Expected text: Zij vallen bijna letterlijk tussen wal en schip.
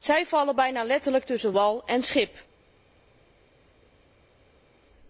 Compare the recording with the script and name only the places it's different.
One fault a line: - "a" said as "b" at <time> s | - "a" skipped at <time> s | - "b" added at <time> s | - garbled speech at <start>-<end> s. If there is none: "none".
none